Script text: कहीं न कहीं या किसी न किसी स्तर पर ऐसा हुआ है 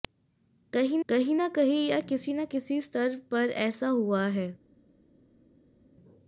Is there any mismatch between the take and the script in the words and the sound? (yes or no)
yes